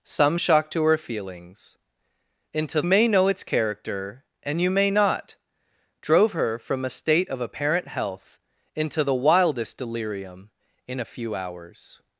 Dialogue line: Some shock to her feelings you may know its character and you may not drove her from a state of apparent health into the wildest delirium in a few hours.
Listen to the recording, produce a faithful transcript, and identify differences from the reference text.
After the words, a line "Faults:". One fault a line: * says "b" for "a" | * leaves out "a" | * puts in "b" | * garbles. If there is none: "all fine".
Some shock to her feelings into may know its character and you may not drove her from a state of apparent health into the wildest delirium in a few hours.
Faults:
* says "into" for "you"